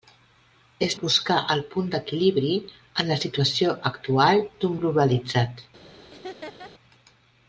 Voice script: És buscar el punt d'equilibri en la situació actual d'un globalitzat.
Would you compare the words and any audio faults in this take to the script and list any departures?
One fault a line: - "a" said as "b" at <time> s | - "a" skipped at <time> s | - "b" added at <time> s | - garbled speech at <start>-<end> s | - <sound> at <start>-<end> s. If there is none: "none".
- laugh at 6.1-6.7 s